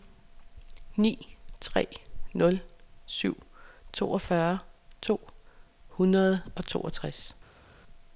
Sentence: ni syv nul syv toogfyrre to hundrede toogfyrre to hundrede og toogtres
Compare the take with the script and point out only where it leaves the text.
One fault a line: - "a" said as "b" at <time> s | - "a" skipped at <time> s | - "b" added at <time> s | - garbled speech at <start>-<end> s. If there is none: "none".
- "syv" said as "tre" at 1.6 s
- "toogfyrre to hundrede" skipped at 6.4 s